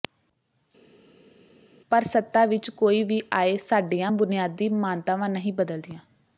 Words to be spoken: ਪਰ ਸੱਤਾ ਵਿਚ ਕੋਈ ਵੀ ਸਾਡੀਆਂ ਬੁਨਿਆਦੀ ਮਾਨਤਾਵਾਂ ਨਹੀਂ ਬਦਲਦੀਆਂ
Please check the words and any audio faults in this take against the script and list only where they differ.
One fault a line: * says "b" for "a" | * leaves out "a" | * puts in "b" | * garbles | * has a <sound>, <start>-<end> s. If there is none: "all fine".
* puts in "ਆਏ"